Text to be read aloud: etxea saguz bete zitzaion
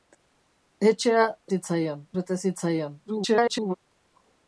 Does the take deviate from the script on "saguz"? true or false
true